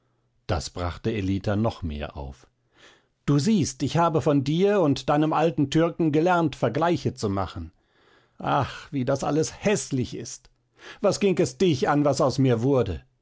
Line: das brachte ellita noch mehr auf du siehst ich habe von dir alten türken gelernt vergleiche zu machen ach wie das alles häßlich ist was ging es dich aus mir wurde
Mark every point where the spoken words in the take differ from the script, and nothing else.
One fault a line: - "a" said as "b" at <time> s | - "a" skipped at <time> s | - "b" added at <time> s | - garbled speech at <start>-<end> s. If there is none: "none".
- "und deinem" added at 4.8 s
- "an was" added at 11.9 s